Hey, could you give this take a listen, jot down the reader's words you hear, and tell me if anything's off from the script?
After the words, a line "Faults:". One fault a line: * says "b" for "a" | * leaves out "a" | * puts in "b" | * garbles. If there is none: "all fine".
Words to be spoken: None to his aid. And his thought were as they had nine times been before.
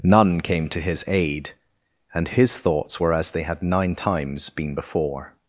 None came to his aid. And his thoughts were as they had nine times been before.
Faults:
* puts in "came"
* says "thoughts" for "thought"